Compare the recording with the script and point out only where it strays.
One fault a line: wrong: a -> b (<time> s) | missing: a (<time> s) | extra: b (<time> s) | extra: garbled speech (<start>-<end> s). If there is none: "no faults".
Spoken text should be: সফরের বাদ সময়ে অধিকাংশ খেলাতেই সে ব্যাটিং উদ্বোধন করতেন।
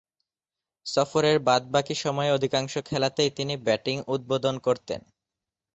extra: বাকী (1.7 s)
wrong: সে -> তিনি (3.3 s)